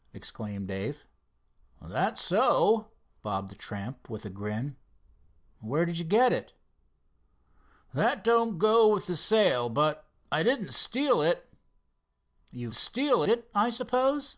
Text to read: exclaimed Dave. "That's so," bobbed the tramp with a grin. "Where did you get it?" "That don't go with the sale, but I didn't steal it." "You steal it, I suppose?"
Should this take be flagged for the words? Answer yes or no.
no